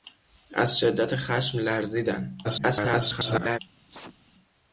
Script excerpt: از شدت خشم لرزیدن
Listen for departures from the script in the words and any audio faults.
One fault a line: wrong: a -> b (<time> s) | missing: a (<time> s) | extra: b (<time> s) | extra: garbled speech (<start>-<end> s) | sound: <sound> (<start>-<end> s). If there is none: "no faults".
extra: garbled speech (2.4-3.6 s)
sound: sneeze (3.9-4.2 s)